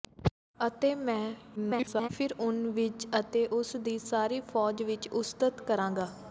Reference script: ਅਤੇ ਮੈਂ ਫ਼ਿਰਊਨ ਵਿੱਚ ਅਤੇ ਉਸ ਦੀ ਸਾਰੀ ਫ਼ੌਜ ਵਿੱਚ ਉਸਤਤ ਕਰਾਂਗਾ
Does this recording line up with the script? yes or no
no